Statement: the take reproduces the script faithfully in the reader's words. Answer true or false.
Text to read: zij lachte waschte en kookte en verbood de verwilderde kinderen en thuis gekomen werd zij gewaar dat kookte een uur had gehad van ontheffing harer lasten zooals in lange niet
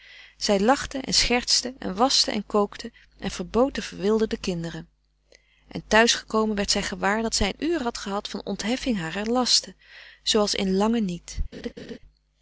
false